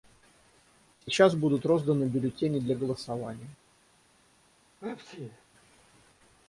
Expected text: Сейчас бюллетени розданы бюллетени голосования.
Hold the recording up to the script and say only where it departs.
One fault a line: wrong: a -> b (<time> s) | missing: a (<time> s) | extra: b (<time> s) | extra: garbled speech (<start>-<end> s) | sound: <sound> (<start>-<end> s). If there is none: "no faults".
wrong: бюллетени -> будут (1.4 s)
extra: для (2.6 s)
sound: sneeze (4.8-5.4 s)